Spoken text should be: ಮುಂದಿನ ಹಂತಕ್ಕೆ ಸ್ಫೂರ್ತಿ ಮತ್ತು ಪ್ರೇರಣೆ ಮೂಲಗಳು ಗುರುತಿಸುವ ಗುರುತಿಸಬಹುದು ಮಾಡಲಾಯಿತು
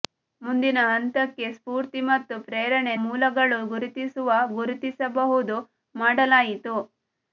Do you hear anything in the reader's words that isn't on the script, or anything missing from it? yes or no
no